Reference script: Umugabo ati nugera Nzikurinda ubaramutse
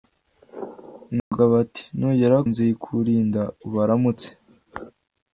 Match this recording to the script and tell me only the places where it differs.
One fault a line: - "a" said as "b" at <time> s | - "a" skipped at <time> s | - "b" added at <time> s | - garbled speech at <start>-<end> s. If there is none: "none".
none